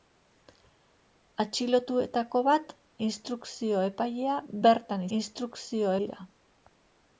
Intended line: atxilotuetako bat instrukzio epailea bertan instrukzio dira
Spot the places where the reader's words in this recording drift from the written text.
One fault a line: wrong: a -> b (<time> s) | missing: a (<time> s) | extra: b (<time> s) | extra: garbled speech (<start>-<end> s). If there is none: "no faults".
no faults